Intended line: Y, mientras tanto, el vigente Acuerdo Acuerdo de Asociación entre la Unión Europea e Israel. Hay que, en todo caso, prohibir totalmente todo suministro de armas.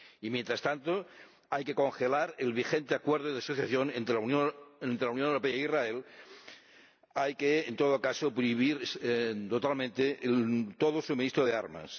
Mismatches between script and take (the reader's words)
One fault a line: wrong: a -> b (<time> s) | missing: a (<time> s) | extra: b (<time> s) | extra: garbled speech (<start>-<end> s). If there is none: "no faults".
extra: hay que congelar (1.5 s)
missing: Acuerdo (3.3 s)